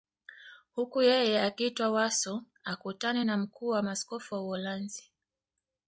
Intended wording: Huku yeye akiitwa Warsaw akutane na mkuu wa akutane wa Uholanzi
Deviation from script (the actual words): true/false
true